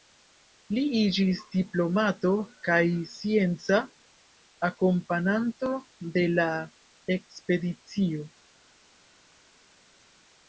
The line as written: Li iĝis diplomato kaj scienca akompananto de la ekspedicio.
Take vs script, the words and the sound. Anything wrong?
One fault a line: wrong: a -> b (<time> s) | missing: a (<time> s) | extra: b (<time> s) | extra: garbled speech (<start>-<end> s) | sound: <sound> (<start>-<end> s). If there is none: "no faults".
no faults